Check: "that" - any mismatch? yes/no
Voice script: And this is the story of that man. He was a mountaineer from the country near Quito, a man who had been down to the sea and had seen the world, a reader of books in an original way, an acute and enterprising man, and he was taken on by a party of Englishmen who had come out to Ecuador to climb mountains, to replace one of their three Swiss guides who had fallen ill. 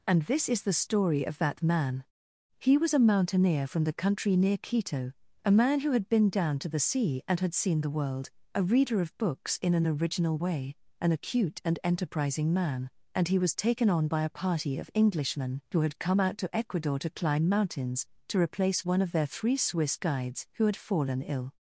no